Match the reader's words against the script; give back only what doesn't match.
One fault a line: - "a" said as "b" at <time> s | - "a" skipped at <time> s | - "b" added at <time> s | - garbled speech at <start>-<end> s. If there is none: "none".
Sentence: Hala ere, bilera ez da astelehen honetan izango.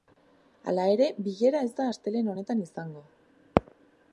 none